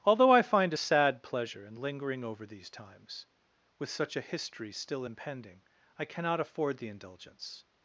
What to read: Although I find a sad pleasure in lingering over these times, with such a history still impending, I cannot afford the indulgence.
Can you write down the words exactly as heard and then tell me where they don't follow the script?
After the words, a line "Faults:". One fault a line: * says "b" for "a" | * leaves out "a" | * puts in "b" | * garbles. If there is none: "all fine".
Although I find a sad pleasure in lingering over these times, with such a history still impending, I cannot afford the indulgence.
Faults:
all fine